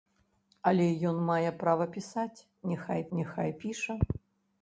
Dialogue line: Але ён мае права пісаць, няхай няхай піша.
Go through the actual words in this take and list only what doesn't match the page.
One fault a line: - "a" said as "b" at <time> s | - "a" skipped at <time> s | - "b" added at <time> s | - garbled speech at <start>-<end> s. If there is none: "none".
none